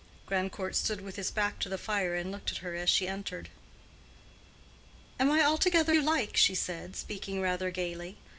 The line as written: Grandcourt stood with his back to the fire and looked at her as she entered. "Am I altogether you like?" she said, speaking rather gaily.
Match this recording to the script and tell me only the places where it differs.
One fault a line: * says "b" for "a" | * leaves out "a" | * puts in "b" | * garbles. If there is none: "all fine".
all fine